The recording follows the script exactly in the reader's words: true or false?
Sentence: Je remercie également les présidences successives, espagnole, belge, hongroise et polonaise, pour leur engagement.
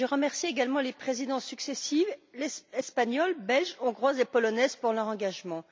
true